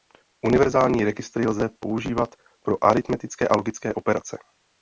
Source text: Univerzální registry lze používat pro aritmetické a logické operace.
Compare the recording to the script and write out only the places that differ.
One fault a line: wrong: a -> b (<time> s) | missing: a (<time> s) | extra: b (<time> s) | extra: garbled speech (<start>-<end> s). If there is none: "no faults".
no faults